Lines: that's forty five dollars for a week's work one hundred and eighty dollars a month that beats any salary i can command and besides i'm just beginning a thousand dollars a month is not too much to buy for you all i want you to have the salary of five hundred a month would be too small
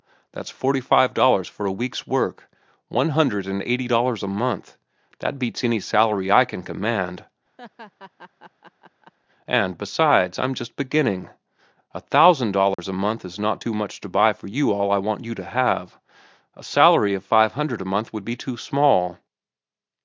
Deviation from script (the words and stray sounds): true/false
true